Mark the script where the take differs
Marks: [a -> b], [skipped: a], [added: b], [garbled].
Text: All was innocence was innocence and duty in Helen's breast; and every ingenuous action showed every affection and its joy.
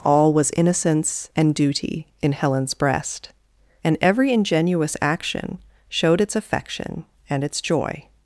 All was innocence [skipped: was innocence] and duty in Helen's breast; and every ingenuous action showed [every -> its] affection and its joy.